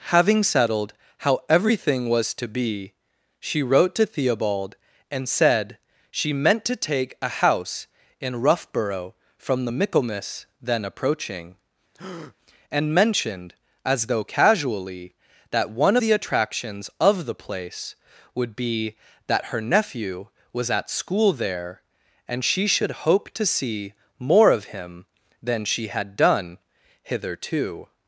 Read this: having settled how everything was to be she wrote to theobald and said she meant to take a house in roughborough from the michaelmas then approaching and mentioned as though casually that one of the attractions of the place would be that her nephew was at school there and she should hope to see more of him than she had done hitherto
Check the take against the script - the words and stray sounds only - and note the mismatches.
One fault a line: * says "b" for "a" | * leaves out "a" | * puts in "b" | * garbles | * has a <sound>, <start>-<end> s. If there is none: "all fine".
* has a breath, 11.9-12.4 s
* leaves out "of"